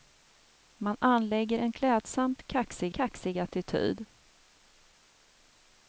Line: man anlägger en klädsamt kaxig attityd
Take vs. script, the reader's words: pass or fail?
fail